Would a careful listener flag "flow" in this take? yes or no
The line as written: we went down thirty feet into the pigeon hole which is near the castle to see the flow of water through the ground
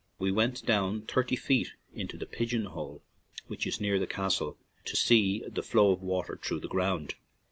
no